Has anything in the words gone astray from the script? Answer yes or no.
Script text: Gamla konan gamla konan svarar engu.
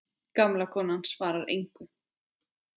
yes